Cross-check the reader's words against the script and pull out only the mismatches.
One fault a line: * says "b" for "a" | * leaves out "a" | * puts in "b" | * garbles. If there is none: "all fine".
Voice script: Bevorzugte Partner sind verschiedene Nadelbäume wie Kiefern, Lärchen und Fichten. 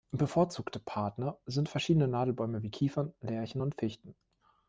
all fine